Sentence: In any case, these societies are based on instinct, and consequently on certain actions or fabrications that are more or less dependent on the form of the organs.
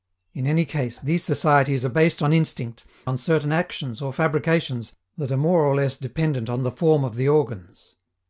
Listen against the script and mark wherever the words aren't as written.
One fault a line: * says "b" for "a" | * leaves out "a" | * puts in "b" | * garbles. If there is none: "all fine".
* leaves out "and consequently"